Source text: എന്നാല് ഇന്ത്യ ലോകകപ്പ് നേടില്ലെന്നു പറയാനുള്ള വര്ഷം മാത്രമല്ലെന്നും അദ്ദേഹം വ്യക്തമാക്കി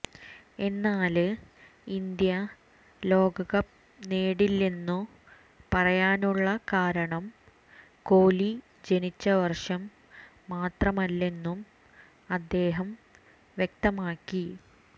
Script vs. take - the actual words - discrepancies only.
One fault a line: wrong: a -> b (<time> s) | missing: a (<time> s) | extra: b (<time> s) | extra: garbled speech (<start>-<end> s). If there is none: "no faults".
extra: കാരണം കോലി ജനിച്ച (6.7 s)